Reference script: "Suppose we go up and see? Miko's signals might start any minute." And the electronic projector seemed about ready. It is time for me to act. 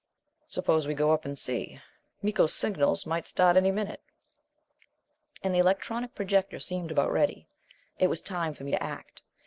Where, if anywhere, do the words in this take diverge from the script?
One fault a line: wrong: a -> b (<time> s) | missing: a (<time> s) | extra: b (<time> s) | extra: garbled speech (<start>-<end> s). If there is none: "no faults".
wrong: is -> was (8.1 s)